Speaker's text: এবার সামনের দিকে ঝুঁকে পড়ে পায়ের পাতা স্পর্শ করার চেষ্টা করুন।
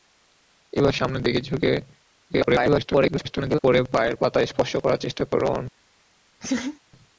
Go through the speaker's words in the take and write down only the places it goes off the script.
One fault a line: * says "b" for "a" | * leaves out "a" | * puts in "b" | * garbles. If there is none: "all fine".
* garbles